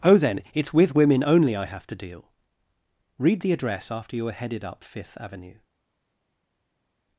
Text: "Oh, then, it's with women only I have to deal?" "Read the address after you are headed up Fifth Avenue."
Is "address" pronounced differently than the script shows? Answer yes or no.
no